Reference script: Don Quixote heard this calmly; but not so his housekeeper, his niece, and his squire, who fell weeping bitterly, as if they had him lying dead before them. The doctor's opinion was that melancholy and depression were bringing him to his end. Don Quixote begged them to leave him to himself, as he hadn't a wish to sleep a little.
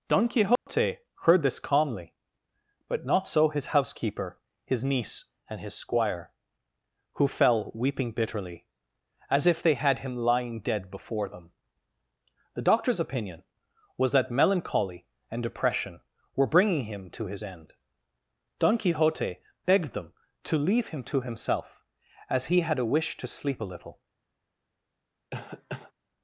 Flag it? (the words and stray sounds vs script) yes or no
yes